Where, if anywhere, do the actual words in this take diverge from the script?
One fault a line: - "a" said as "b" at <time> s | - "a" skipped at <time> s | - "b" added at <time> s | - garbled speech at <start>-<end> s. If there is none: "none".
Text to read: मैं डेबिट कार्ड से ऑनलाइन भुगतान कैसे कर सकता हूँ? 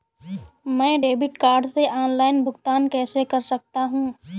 none